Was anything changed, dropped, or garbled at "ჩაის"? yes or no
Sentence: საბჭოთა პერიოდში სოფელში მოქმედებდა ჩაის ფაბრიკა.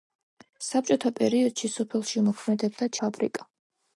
yes